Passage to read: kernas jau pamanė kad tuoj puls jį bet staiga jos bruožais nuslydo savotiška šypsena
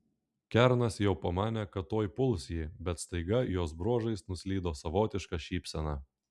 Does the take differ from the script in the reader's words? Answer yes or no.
no